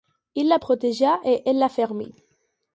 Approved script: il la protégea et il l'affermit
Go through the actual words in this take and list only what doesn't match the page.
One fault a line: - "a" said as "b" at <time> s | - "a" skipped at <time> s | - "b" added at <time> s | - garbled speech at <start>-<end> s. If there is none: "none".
- "il" said as "elle" at 1.5 s